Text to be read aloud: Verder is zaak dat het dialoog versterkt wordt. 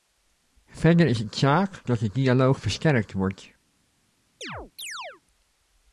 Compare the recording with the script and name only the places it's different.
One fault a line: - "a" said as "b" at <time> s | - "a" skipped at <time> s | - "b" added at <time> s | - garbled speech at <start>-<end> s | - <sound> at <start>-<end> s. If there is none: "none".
- "het" added at 1.2 s
- "het" said as "de" at 2.0 s
- chirp at 4.4-5.2 s